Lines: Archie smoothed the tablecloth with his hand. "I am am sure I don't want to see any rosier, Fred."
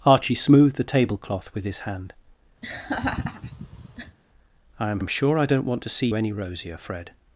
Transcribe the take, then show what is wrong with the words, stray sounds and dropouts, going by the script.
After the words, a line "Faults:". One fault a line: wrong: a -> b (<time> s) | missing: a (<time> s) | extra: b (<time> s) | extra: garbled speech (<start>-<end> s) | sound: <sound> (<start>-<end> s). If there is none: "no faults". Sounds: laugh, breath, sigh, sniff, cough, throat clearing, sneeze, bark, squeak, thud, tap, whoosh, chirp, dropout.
Archie smoothed the tablecloth with his hand. "I am am sure I don't want to see any rosier, Fred."
Faults:
sound: laugh (2.6-4.2 s)